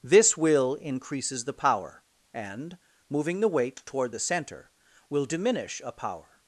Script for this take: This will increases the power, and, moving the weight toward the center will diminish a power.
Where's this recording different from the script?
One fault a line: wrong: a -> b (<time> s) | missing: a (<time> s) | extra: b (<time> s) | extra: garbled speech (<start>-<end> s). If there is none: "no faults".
no faults